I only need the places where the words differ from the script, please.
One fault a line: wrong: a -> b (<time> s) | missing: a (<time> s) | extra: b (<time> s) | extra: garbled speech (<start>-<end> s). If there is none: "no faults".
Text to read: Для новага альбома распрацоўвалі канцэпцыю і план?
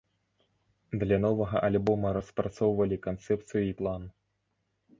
no faults